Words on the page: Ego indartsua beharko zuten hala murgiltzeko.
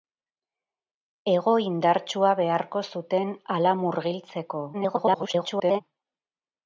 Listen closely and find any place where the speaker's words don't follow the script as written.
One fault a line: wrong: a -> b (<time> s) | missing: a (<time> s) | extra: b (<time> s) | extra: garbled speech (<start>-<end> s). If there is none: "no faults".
extra: garbled speech (4.7-5.8 s)